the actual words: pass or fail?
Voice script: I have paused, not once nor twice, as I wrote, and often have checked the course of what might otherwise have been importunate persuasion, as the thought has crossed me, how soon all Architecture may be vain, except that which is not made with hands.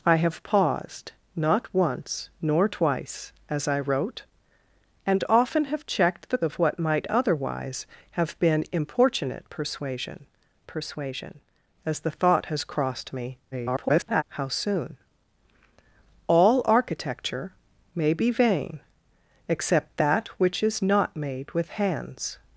fail